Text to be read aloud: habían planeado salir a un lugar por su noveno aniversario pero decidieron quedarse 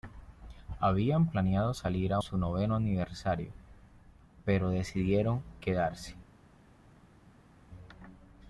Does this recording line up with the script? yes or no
no